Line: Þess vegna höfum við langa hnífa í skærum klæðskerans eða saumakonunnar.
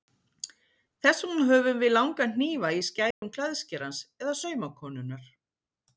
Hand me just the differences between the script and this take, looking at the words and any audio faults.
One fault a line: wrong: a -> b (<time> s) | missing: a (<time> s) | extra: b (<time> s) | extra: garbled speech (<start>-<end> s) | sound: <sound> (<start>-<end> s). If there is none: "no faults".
sound: dropout (3.1-3.2 s)